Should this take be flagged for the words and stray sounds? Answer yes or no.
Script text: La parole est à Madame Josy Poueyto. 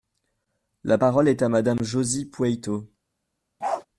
yes